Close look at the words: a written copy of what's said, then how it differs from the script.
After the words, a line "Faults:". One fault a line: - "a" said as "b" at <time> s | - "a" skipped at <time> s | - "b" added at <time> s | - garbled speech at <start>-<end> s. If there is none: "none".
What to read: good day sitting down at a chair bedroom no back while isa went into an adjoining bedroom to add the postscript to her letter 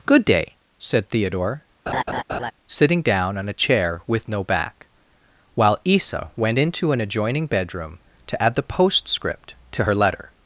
good day said theodore sitting down on a chair with no back while isa went into an adjoining bedroom to add the postscript to her letter
Faults:
- "said theodore" added at 0.8 s
- "at" said as "on" at 3.4 s
- "bedroom" said as "with" at 4.1 s